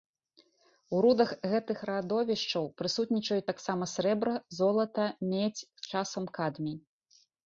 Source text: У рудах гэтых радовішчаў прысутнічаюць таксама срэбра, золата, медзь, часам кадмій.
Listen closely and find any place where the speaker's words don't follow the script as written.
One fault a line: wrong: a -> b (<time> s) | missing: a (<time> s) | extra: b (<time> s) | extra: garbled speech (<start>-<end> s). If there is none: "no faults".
no faults